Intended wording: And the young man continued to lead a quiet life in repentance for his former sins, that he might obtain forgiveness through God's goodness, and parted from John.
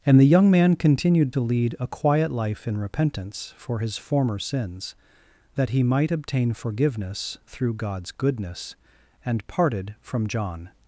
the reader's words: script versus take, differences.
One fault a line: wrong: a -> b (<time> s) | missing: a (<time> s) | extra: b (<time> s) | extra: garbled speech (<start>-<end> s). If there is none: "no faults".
no faults